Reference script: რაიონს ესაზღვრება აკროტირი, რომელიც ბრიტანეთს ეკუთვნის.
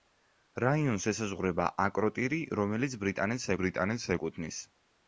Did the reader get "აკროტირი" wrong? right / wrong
right